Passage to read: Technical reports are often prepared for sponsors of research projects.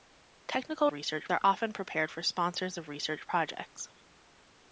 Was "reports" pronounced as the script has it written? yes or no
no